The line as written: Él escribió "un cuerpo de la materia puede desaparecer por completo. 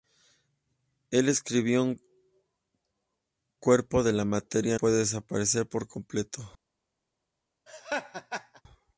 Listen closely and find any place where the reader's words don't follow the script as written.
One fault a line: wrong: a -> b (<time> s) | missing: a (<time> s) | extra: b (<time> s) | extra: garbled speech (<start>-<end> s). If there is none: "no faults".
no faults